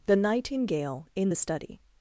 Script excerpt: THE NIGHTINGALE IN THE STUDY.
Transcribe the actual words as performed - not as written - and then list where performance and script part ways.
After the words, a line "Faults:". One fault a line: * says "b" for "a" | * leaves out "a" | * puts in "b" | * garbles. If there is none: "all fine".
THE NIGHTINGALE IN THE STUDY.
Faults:
all fine